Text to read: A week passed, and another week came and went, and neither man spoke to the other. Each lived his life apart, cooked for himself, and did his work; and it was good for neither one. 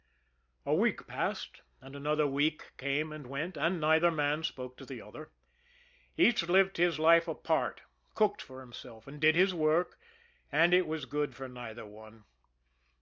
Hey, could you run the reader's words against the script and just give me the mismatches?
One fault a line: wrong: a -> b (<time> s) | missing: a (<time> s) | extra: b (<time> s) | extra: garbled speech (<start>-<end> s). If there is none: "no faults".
no faults